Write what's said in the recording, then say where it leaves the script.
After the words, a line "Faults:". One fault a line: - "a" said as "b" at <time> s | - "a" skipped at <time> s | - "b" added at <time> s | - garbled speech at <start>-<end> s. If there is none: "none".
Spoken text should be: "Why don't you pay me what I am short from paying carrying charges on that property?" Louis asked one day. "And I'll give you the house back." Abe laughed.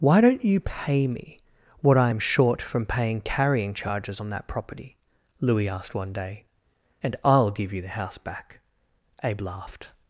"Why don't you pay me what I am short from paying carrying charges on that property?" Louis asked one day. "And I'll give you the house back." Abe laughed.
Faults:
none